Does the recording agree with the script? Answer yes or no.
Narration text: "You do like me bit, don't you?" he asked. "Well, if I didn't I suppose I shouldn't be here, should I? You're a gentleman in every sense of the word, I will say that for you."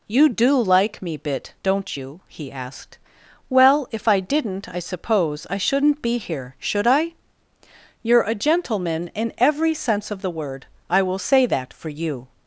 yes